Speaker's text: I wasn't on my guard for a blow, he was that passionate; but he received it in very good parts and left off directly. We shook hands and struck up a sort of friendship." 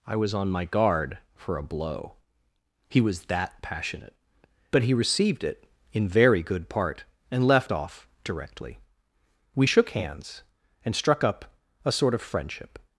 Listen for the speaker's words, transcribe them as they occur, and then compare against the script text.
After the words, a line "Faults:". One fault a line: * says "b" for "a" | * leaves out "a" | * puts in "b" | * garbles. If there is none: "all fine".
I was on my guard for a blow, he was that passionate; but he received it in very good part and left off directly. We shook hands and struck up a sort of friendship."
Faults:
* says "was" for "wasn't"
* says "part" for "parts"